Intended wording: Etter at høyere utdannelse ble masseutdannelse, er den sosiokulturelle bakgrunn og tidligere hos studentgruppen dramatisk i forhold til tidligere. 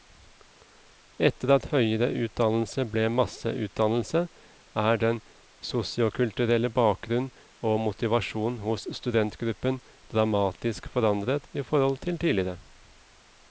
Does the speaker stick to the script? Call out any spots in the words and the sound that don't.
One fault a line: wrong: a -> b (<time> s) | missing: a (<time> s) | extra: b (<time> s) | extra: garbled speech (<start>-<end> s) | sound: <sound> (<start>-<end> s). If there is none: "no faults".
wrong: tidligere -> motivasjon (7.8 s)
extra: forandret (10.9 s)